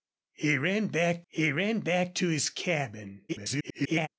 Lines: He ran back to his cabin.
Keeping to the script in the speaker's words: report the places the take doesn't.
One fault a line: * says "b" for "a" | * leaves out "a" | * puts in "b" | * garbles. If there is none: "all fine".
* puts in "he ran back"
* garbles